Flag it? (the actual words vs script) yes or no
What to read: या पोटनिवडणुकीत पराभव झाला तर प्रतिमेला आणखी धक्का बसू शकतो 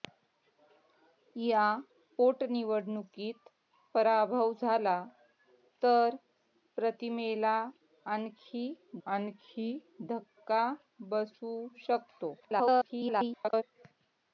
yes